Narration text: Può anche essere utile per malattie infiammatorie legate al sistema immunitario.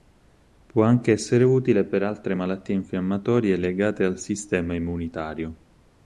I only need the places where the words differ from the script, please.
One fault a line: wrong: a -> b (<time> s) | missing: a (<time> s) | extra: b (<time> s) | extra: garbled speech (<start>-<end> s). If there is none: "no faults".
extra: altre (2.0 s)